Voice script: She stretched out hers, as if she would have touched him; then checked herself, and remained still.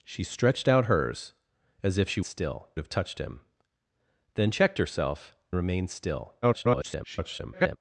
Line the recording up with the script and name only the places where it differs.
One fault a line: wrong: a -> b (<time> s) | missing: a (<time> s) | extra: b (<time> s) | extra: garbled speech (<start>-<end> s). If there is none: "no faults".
wrong: would -> still (2.2 s)
missing: and (5.4 s)
extra: garbled speech (6.4-7.8 s)